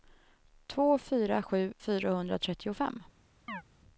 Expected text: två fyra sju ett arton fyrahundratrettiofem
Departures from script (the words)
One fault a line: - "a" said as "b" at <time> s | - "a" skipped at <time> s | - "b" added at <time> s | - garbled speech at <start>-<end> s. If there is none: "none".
- "ett arton" skipped at 1.7 s